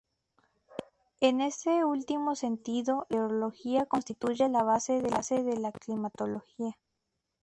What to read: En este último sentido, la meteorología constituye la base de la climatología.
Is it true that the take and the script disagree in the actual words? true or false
false